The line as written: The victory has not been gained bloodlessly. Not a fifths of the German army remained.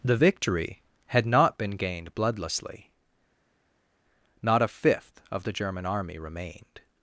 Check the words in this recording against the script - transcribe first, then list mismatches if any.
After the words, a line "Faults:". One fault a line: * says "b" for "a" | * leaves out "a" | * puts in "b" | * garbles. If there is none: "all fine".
The victory had not been gained bloodlessly. Not a fifth of the German army remained.
Faults:
* says "had" for "has"
* says "fifth" for "fifths"